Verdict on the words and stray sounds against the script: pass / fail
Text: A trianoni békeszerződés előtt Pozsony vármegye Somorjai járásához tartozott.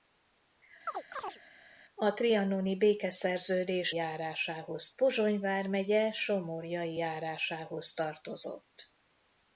fail